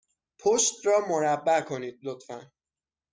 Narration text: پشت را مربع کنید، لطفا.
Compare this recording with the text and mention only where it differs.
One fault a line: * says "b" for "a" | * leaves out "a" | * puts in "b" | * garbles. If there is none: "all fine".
all fine